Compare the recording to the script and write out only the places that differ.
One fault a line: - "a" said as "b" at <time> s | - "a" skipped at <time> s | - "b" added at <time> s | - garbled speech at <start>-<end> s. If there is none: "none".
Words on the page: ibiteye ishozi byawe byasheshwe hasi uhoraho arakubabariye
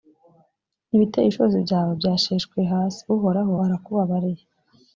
none